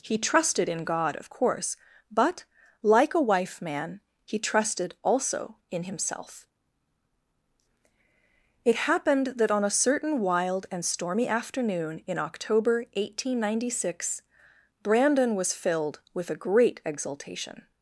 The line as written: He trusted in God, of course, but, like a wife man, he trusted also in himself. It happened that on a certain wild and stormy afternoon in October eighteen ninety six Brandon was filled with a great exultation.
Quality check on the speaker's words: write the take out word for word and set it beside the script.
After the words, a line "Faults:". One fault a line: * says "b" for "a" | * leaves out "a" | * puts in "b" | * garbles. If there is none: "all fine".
He trusted in God, of course, but, like a wife man, he trusted also in himself. It happened that on a certain wild and stormy afternoon in October eighteen ninety six Brandon was filled with a great exultation.
Faults:
all fine